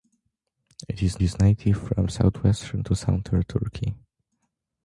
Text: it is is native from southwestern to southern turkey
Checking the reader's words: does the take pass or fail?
pass